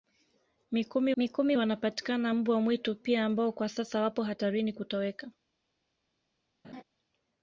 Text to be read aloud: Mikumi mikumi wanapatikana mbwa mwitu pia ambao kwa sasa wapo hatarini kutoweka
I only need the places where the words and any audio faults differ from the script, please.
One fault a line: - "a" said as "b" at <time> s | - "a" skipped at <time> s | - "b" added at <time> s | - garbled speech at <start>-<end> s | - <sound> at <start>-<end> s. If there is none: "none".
- laugh at 6.6-6.8 s